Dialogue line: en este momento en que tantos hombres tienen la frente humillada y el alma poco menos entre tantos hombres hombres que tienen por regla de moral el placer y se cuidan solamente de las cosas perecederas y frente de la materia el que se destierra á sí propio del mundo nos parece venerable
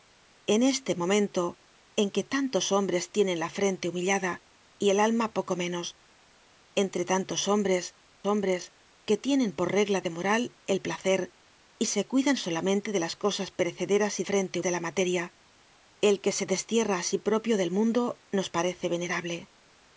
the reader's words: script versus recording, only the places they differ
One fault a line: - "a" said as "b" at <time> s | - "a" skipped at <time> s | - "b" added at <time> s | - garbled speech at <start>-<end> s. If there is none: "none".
none